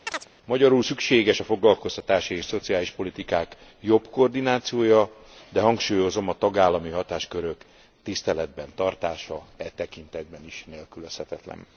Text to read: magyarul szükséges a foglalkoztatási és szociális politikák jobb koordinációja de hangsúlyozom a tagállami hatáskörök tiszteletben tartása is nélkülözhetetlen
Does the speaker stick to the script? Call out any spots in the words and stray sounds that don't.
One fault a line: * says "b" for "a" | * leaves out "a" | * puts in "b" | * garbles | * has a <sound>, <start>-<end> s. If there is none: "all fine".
* has a chirp, 0.1-0.3 s
* puts in "e tekintetben"